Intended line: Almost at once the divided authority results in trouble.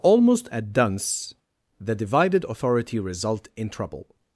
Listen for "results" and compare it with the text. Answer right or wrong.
wrong